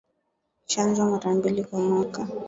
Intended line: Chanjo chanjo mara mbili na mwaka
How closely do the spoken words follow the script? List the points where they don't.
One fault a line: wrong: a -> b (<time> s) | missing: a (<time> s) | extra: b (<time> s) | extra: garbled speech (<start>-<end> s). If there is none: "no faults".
missing: chanjo (1.1 s)
wrong: na -> kwa (1.6 s)